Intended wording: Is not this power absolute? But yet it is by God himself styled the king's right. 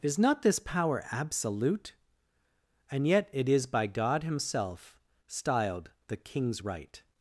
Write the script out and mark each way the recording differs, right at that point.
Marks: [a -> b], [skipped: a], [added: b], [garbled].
Is not this power absolute? [But -> And] yet it is by God himself styled the king's right.